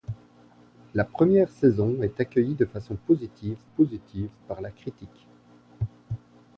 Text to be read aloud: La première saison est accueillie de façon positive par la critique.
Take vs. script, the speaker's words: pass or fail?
fail